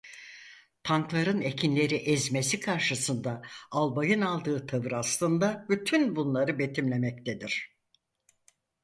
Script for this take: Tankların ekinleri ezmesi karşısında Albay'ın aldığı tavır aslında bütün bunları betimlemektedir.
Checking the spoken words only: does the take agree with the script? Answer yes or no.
yes